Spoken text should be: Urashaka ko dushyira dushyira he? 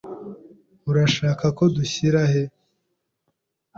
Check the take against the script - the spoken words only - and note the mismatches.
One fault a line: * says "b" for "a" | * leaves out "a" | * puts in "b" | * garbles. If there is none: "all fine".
* leaves out "dushyira"